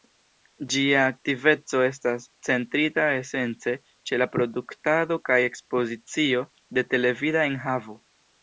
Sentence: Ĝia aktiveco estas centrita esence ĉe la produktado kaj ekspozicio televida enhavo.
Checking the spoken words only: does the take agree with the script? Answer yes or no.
no